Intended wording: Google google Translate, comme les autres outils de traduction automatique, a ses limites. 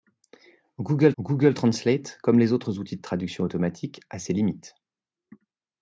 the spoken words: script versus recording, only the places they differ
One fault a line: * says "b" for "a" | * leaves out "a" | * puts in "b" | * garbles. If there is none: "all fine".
all fine